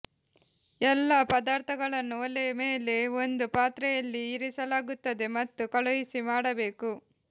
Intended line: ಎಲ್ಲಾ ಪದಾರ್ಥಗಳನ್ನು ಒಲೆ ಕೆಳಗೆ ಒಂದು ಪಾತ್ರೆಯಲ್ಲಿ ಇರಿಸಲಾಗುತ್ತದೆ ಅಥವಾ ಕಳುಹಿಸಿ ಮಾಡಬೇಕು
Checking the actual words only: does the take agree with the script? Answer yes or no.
no